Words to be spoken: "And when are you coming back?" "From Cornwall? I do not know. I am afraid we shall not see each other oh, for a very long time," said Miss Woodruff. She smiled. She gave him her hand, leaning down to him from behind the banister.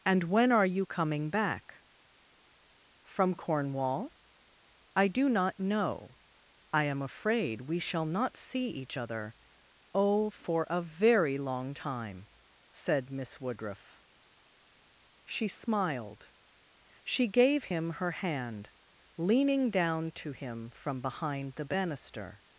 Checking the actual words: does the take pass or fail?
pass